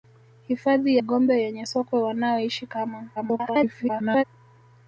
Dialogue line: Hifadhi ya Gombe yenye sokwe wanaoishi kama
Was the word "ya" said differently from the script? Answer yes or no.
yes